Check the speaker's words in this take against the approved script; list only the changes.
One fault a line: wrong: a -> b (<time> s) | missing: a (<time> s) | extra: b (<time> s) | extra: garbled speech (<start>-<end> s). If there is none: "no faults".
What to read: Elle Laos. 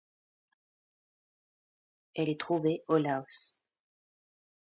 extra: est trouvée au (2.3 s)